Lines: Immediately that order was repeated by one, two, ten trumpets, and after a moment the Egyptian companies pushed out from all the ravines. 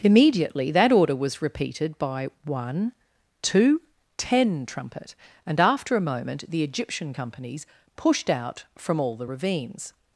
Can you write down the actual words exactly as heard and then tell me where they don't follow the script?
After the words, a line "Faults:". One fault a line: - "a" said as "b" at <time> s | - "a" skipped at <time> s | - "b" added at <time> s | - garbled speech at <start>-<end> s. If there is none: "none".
Immediately that order was repeated by one, two, ten trumpet, and after a moment the Egyptian companies pushed out from all the ravines.
Faults:
- "trumpets" said as "trumpet" at 4.7 s